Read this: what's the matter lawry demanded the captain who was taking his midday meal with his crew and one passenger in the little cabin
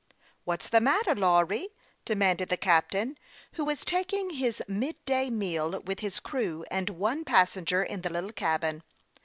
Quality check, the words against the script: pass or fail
pass